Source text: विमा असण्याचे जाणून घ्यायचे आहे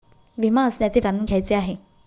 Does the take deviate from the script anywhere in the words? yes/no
no